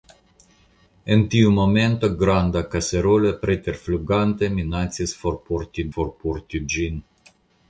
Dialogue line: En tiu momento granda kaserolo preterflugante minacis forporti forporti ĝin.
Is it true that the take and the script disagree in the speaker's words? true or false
false